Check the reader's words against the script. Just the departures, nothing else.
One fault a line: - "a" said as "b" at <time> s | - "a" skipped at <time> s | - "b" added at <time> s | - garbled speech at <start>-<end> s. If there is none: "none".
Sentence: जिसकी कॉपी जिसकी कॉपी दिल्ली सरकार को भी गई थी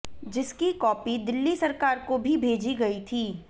- "जिसकी कॉपी" skipped at 1.2 s
- "भेजी" added at 2.4 s